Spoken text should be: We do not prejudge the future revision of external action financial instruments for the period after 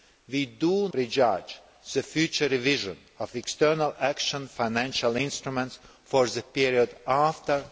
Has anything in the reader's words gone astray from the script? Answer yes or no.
yes